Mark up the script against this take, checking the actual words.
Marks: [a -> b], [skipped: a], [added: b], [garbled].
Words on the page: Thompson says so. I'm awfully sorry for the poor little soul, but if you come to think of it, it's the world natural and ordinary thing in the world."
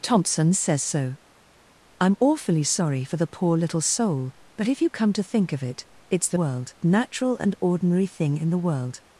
Thompson says so. I'm awfully sorry for the poor little soul, but if you come to think of it, it's the world natural and ordinary thing in the world."